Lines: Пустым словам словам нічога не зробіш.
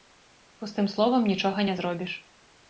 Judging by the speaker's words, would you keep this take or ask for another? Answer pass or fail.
fail